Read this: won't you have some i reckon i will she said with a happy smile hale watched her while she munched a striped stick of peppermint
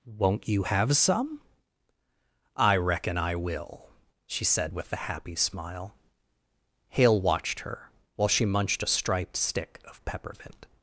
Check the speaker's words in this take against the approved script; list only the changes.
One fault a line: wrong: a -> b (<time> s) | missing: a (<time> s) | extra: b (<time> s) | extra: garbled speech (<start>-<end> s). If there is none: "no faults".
no faults